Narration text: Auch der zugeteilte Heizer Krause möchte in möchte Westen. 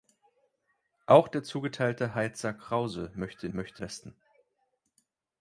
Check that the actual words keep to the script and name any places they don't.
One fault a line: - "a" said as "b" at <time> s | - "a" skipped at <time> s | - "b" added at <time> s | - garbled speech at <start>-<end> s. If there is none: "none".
none